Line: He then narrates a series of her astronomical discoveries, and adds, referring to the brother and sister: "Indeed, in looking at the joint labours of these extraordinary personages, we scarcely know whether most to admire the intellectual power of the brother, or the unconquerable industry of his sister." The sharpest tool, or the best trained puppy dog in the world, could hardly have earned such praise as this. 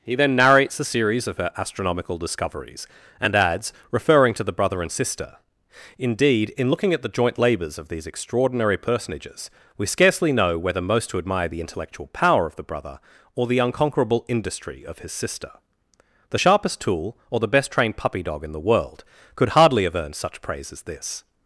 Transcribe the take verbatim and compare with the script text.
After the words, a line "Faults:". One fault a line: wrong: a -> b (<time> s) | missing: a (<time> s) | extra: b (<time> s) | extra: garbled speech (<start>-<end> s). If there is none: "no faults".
He then narrates a series of her astronomical discoveries, and adds, referring to the brother and sister: "Indeed, in looking at the joint labours of these extraordinary personages, we scarcely know whether most to admire the intellectual power of the brother, or the unconquerable industry of his sister." The sharpest tool, or the best trained puppy dog in the world, could hardly have earned such praise as this.
Faults:
no faults